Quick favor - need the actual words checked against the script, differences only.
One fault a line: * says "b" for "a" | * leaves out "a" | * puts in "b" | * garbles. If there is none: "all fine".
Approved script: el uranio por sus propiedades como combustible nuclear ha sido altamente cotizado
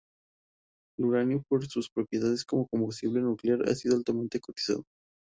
all fine